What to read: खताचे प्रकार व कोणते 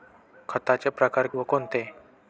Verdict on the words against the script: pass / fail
pass